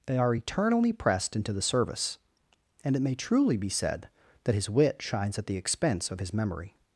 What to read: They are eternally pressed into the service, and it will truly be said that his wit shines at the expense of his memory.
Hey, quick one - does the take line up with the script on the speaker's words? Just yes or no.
no